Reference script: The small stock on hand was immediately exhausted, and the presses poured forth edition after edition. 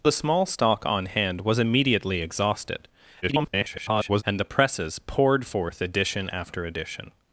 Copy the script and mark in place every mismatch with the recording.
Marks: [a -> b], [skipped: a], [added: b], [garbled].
The small stock on hand was immediately exhausted, [garbled] and the presses poured forth edition after edition.